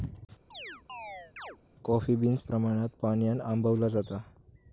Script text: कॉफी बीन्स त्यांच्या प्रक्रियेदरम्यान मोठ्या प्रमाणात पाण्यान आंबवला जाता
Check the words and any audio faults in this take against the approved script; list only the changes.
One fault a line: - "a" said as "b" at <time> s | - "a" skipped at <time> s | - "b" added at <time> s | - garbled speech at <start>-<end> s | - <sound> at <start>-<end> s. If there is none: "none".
- chirp at 0.5-1.6 s
- "त्यांच्या प्रक्रियेदरम्यान मोठ्या" skipped at 2.4 s